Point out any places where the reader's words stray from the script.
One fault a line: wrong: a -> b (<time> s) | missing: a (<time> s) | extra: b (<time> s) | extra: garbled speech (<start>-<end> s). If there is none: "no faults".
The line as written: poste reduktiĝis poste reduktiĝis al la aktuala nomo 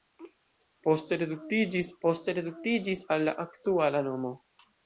no faults